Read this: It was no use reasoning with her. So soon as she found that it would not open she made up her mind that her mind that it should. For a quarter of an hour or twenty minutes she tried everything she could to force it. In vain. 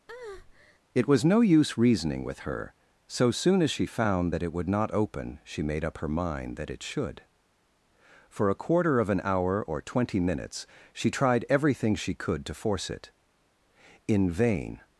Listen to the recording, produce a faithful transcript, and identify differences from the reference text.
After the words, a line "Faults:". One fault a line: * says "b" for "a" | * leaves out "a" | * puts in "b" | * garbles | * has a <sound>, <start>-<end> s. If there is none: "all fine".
It was no use reasoning with her. So soon as she found that it would not open she made up her mind that it should. For a quarter of an hour or twenty minutes she tried everything she could to force it. In vain.
Faults:
* has a breath, 0.1-0.8 s
* leaves out "her mind that"